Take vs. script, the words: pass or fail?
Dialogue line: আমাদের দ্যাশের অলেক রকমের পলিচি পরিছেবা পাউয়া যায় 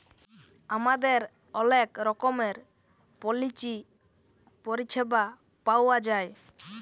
fail